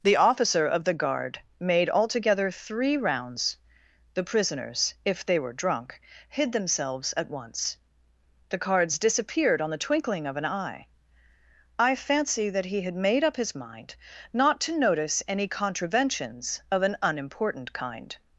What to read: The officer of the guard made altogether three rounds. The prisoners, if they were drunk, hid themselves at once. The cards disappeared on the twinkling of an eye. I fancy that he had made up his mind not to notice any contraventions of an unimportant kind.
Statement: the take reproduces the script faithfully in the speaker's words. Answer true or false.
true